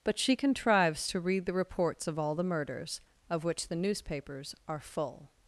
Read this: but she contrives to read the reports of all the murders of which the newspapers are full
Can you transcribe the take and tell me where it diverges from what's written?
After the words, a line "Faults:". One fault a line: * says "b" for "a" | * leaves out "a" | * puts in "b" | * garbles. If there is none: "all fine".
but she contrives to read the reports of all the murders of which the newspapers are full
Faults:
all fine